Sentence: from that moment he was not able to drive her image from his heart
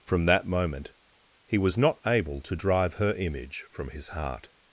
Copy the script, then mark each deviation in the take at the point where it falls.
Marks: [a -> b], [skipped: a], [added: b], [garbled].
from that moment he was not able to drive her image from his heart